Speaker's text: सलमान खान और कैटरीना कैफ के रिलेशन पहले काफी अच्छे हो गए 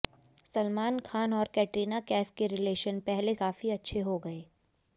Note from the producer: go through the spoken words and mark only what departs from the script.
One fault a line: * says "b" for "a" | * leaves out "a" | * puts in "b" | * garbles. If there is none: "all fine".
all fine